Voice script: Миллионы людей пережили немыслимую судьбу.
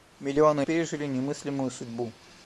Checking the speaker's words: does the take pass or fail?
fail